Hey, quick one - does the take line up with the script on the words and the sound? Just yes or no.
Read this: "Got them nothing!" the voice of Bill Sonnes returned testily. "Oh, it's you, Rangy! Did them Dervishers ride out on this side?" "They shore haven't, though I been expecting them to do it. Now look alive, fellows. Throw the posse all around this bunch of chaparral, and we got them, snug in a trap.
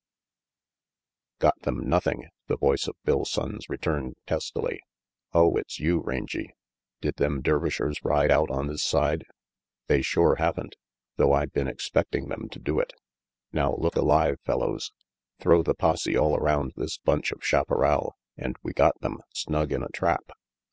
yes